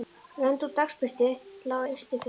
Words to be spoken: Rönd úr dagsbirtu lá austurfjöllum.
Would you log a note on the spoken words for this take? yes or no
no